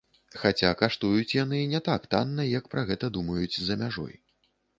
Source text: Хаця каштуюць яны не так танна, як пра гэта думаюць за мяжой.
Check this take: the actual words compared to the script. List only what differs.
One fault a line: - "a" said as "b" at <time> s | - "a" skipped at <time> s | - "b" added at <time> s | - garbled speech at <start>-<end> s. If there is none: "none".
none